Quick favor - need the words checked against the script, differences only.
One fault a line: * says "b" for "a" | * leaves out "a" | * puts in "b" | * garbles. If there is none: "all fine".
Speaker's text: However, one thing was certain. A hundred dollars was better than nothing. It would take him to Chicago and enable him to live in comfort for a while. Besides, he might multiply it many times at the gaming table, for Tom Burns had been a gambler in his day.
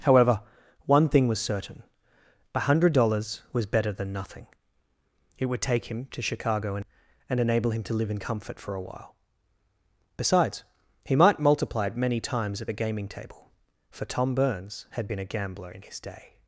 * puts in "and"